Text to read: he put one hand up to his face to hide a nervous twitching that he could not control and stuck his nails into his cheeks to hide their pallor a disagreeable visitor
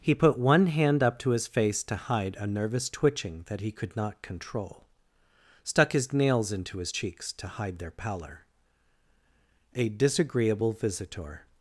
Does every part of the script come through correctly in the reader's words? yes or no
no